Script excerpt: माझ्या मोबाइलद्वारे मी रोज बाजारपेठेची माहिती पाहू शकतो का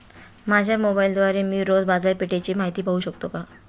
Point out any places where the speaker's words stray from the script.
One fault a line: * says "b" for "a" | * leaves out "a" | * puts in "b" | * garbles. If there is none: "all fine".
all fine